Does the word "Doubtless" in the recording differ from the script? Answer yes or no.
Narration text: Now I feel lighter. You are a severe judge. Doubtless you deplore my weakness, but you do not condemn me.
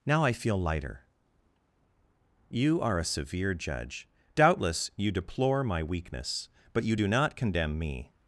no